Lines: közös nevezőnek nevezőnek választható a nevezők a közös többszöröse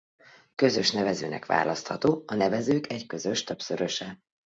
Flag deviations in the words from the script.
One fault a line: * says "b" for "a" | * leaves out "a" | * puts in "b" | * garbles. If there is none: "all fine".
* leaves out "nevezőnek"
* says "egy" for "a"